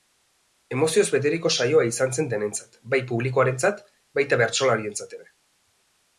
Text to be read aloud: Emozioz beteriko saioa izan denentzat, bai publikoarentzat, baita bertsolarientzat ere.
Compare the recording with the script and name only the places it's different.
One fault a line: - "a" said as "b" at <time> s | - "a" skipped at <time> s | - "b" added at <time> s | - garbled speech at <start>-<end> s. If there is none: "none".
- "zen" added at 2.2 s